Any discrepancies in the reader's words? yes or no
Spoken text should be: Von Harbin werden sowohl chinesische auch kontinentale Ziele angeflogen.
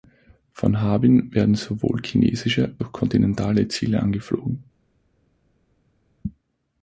no